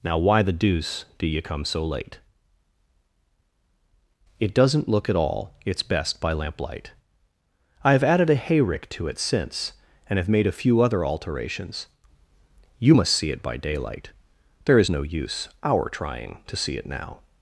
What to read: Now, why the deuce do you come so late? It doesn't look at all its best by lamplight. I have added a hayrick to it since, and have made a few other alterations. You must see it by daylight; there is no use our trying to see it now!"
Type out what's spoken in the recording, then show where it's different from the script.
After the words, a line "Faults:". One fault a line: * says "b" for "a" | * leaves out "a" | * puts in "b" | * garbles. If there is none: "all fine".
Now, why the deuce do you come so late? It doesn't look at all its best by lamplight. I have added a hayrick to it since, and have made a few other alterations. You must see it by daylight; there is no use our trying to see it now!"
Faults:
all fine